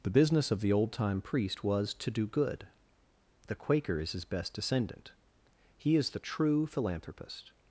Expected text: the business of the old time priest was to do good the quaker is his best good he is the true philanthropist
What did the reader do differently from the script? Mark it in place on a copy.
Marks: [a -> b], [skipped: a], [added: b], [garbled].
the business of the old time priest was to do good the quaker is his best [good -> descendant] he is the true philanthropist